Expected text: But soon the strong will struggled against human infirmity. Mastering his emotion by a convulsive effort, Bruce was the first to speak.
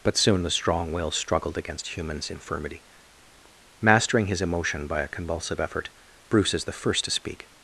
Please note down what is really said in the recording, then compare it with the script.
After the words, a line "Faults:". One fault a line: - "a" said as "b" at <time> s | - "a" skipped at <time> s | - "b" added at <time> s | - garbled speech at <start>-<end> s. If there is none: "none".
But soon the strong will struggled against humans infirmity. Mastering his emotion by a convulsive effort, Bruce is the first to speak.
Faults:
- "human" said as "humans" at 1.9 s
- "was" said as "is" at 6.5 s